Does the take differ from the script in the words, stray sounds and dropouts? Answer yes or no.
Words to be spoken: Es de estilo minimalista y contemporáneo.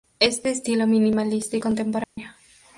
yes